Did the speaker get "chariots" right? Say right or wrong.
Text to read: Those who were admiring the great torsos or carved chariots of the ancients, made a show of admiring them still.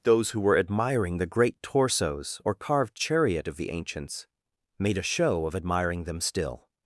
wrong